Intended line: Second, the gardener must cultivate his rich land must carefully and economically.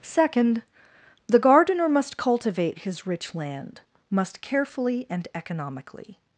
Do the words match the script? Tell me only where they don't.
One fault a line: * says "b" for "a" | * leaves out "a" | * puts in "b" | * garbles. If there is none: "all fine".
all fine